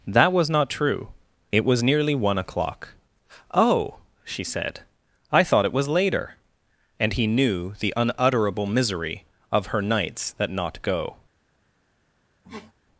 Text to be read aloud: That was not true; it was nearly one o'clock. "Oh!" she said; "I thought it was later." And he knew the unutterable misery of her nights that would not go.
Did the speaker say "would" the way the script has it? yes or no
no